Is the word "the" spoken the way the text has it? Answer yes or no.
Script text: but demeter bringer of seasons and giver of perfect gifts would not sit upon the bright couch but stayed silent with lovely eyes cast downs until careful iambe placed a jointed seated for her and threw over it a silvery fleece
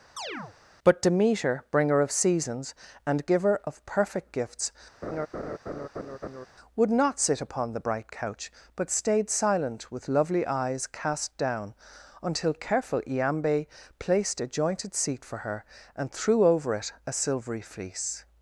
yes